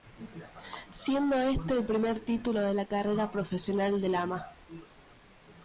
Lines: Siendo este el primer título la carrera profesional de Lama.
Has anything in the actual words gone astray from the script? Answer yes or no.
yes